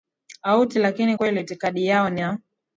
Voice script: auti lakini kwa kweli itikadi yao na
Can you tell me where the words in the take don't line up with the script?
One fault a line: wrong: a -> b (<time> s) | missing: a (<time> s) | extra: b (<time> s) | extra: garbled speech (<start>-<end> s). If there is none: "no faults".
missing: kwa (1.2 s)